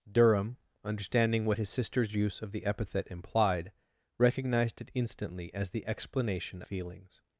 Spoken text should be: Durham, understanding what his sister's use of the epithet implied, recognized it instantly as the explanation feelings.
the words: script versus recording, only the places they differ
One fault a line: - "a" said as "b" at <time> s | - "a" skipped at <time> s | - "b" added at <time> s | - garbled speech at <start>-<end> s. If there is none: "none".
none